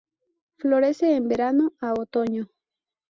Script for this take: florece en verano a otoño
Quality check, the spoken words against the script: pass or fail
pass